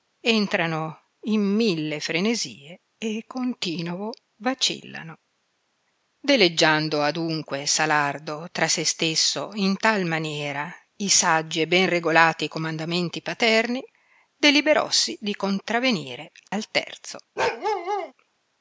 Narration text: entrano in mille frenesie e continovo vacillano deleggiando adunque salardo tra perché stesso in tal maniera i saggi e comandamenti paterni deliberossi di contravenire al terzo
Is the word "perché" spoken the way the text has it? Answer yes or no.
no